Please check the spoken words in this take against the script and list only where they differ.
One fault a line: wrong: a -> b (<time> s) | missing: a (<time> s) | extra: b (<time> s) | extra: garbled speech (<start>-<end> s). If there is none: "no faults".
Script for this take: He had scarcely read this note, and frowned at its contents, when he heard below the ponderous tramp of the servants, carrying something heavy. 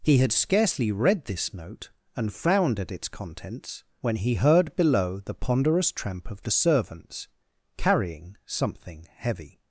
no faults